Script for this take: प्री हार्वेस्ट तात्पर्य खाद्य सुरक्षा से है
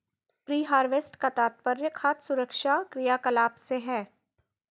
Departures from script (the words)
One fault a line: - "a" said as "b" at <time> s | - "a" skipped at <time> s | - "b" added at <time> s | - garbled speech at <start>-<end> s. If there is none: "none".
- "का" added at 1.2 s
- "क्रियाकलाप" added at 2.9 s